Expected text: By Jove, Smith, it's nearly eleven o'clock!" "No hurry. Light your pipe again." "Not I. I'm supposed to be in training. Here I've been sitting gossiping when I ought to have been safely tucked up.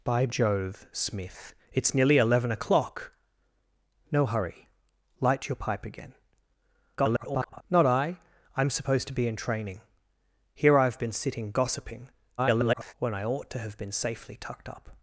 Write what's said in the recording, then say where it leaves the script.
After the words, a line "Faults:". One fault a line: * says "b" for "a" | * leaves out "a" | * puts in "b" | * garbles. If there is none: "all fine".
By Jove, Smith, it's nearly eleven o'clock!" "No hurry. Light your pipe again." [garbled] "Not I. I'm supposed to be in training. Here I've been sitting gossiping [garbled] when I ought to have been safely tucked up.
Faults:
* garbles
* garbles